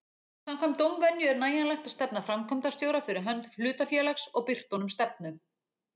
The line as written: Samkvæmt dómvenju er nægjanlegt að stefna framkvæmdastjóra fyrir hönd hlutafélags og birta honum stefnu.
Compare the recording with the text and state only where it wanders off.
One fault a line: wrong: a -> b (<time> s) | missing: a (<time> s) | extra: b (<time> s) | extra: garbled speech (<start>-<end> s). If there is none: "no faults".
no faults